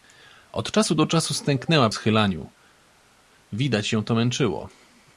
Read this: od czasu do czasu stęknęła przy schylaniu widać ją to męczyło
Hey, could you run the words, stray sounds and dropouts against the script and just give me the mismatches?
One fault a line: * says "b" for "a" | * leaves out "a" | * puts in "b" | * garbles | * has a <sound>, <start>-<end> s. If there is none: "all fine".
* leaves out "przy"